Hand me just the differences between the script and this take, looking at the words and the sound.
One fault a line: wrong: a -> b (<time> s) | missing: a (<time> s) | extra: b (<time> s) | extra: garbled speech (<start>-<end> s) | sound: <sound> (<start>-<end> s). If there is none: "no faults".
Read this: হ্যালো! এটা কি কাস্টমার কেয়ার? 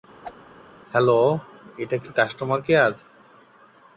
sound: whoosh (0.2-0.4 s)